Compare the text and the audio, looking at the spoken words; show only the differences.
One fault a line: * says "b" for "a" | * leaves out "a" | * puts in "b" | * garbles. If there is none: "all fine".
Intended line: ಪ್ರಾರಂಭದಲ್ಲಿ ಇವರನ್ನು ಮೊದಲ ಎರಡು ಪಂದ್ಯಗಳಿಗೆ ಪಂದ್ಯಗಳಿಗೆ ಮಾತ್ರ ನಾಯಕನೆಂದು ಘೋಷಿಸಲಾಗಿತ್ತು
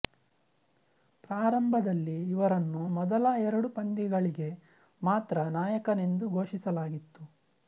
* leaves out "ಪಂದ್ಯಗಳಿಗೆ"